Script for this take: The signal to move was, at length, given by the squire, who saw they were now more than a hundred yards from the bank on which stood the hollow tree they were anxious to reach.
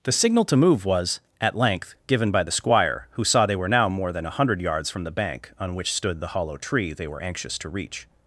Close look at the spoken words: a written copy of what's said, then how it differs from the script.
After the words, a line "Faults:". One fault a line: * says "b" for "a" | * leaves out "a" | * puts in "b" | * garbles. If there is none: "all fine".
The signal to move was, at length, given by the squire, who saw they were now more than a hundred yards from the bank on which stood the hollow tree they were anxious to reach.
Faults:
all fine